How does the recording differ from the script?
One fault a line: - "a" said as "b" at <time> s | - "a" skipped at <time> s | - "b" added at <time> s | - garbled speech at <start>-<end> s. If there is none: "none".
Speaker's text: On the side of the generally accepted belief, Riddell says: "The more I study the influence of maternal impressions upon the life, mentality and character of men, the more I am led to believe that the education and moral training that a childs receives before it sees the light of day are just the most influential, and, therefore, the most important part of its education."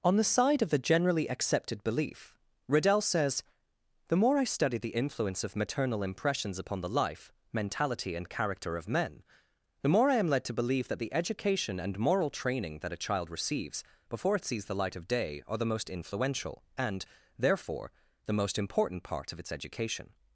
- "childs" said as "child" at 13.0 s
- "just" skipped at 15.6 s